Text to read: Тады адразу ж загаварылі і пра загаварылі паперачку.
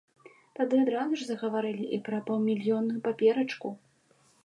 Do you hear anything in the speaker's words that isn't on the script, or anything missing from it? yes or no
yes